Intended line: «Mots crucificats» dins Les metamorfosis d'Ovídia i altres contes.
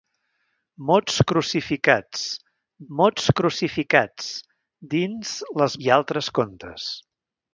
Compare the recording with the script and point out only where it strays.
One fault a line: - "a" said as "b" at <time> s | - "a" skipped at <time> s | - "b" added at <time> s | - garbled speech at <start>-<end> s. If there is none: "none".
- "mots crucificats" added at 3.0 s
- "metamorfosis d'Ovídia" skipped at 5.8 s